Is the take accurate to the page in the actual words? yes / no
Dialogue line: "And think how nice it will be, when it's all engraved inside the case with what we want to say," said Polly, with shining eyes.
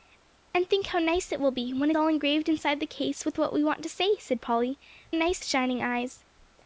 no